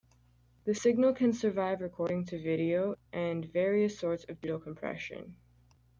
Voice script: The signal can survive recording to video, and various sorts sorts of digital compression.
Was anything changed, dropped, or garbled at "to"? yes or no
no